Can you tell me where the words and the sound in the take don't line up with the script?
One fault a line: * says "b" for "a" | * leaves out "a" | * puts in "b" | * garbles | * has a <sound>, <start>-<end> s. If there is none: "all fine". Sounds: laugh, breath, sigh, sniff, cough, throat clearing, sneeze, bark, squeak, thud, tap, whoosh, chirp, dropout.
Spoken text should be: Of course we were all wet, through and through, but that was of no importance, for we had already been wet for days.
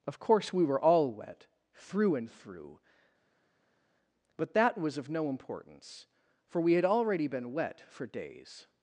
all fine